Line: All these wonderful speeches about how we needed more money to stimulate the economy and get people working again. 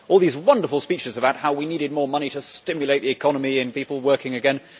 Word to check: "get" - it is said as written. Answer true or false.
false